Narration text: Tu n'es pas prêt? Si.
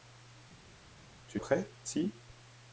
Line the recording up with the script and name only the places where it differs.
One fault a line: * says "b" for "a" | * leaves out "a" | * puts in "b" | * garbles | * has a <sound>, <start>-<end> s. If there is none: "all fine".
* leaves out "n'es pas"